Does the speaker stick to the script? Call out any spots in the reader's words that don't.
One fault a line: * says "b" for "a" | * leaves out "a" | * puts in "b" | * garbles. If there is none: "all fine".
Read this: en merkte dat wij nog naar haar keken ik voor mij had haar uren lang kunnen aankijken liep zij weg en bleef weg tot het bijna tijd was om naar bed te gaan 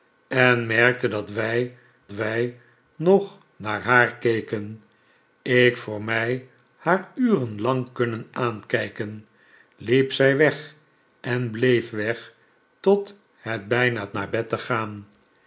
* puts in "wij"
* leaves out "had"
* leaves out "tijd was om"